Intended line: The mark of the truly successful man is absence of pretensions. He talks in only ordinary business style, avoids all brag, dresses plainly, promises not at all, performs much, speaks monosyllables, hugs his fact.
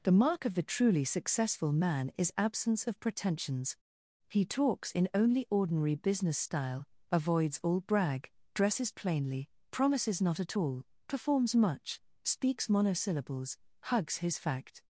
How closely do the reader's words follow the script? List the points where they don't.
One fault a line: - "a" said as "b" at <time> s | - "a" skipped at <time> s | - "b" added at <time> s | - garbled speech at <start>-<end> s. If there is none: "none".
none